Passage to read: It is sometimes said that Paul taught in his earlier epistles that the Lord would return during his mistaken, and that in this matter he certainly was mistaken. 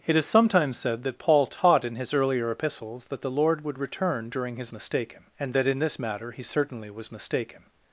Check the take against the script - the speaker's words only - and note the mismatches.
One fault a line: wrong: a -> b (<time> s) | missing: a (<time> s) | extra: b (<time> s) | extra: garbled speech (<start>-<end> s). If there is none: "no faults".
no faults